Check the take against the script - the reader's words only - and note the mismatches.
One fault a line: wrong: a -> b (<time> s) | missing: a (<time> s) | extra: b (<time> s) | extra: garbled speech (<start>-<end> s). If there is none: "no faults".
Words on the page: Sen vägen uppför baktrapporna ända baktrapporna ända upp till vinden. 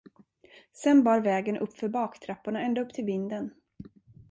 extra: bar (1.0 s)
missing: baktrapporna ända (2.8 s)